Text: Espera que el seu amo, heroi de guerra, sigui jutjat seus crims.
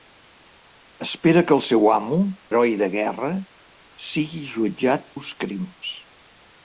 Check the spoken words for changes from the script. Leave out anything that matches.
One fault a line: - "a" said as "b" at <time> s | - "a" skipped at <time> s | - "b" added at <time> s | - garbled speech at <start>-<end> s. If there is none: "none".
none